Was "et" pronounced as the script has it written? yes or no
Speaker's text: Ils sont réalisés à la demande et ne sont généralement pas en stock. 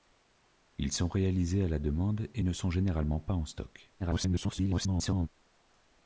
yes